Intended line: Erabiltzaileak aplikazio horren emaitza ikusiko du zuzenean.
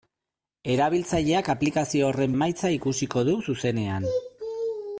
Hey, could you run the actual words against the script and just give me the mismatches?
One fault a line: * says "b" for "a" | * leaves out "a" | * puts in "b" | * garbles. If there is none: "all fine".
all fine